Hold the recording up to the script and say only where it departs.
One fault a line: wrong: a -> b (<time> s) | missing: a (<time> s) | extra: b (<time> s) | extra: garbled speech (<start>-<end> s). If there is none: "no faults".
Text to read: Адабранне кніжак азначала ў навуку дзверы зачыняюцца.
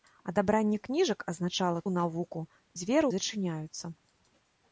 no faults